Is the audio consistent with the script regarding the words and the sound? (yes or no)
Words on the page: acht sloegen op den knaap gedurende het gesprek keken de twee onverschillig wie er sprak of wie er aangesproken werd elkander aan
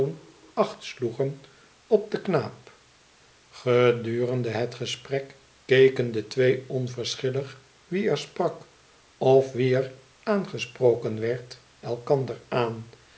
yes